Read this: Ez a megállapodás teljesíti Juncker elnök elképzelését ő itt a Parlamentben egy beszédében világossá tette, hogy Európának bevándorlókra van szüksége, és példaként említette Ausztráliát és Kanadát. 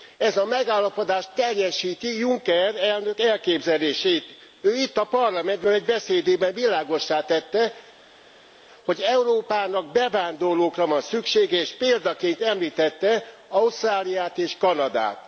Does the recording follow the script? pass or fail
pass